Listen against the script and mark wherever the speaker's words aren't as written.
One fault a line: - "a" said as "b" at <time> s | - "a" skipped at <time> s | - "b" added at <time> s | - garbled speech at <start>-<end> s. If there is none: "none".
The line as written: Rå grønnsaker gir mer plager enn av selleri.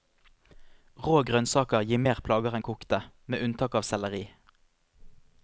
- "kokte med unntak" added at 2.7 s